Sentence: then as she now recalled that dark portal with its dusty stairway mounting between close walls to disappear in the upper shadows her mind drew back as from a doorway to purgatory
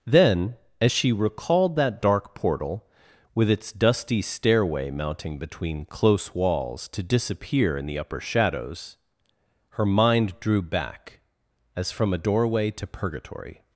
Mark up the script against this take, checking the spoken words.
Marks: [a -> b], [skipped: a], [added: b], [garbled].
then as she [skipped: now] recalled that dark portal with its dusty stairway mounting between close walls to disappear in the upper shadows her mind drew back as from a doorway to purgatory